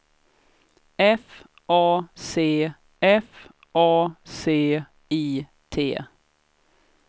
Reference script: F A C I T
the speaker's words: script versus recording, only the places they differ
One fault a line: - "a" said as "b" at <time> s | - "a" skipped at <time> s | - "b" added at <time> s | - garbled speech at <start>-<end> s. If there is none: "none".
- "f A C" added at 3.0 s